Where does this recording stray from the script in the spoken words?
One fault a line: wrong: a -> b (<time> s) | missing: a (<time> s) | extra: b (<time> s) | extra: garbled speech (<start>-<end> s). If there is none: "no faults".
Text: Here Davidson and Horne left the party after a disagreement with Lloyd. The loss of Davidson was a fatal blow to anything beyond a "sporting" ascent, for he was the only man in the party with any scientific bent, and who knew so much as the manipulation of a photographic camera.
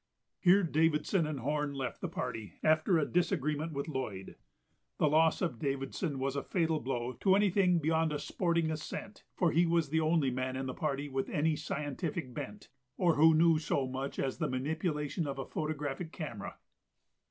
wrong: and -> or (13.0 s)